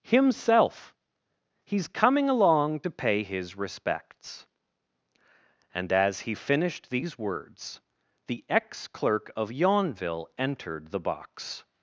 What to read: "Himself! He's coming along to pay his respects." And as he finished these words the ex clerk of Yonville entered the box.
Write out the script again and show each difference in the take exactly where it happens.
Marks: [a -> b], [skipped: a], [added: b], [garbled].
"Himself! He's coming along to pay his respects." And as he finished these words the ex clerk of Yonville entered the box.